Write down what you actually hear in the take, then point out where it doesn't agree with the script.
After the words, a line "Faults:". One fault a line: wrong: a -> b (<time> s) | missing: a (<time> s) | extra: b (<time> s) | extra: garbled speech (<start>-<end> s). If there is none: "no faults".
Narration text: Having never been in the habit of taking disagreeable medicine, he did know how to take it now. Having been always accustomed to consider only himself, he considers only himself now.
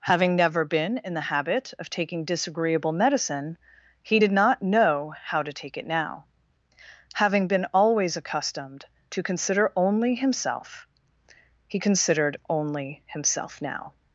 Having never been in the habit of taking disagreeable medicine, he did not know how to take it now. Having been always accustomed to consider only himself, he considered only himself now.
Faults:
extra: not (4.3 s)
wrong: considers -> considered (11.8 s)